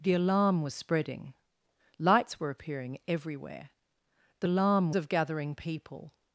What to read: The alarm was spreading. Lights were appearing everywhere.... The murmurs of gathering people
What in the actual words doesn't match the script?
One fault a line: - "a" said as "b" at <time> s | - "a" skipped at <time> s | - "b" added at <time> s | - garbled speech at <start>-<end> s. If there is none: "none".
- "murmurs" said as "alarm" at 4.4 s